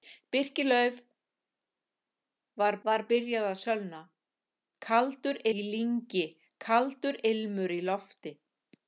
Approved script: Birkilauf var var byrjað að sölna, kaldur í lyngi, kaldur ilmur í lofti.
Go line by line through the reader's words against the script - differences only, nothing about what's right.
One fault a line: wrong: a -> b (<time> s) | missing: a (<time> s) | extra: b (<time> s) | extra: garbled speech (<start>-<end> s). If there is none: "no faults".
no faults